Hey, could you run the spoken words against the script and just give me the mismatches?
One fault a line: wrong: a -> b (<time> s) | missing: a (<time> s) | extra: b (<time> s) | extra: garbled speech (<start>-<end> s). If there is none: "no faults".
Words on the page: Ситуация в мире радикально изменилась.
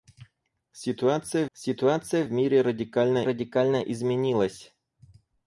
extra: ситуация (1.5 s)
extra: радикально (3.2 s)